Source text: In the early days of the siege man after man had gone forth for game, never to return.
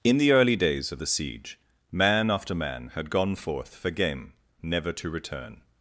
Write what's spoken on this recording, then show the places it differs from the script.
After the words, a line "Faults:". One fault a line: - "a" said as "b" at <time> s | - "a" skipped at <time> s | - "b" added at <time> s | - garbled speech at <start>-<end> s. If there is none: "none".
In the early days of the siege man after man had gone forth for game, never to return.
Faults:
none